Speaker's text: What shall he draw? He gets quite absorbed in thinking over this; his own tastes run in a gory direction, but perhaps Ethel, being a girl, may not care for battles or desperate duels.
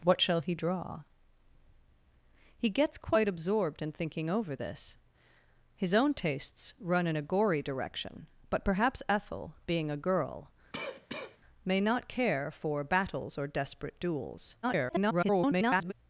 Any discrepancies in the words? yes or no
yes